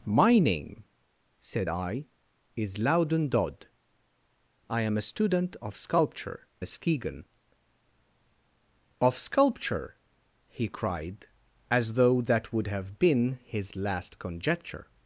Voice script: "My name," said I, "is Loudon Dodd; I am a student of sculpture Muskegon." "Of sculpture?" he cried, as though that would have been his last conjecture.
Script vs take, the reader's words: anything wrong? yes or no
no